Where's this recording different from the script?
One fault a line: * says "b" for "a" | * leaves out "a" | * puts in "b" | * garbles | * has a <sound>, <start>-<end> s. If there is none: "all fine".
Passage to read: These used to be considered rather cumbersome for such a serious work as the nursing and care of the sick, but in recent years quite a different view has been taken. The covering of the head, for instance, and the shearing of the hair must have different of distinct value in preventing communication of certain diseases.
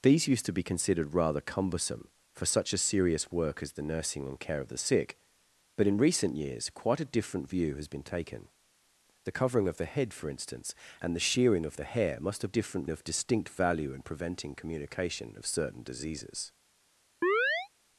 * has a chirp, 17.2-17.7 s